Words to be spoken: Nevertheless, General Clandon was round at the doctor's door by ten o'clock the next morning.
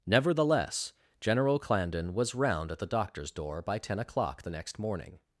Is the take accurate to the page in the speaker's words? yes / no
yes